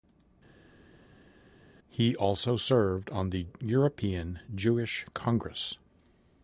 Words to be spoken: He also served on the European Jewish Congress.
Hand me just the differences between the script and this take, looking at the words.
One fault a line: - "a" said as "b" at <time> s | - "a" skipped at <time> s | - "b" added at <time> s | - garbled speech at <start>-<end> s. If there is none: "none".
none